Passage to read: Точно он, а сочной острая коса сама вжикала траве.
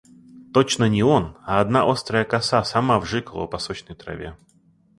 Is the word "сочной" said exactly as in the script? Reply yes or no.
no